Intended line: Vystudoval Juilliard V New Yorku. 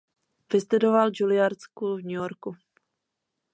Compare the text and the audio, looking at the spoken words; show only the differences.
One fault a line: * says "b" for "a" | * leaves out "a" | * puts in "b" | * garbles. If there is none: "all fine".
* puts in "School"